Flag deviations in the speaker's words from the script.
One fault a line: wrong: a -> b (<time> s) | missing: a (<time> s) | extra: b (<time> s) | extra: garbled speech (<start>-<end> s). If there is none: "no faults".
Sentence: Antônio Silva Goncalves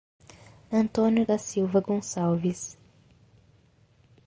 extra: da (1.2 s)